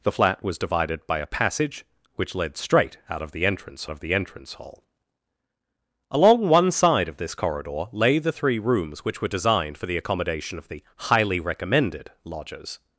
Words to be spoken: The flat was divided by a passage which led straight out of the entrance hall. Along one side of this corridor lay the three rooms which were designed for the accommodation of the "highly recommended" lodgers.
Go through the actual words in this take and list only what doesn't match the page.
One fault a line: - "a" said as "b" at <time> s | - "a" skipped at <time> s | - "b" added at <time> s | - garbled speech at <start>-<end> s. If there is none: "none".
- "of the entrance" added at 3.9 s